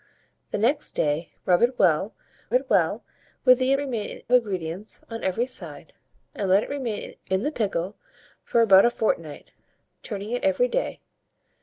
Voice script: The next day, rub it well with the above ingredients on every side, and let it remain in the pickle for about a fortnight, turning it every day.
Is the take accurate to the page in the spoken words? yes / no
no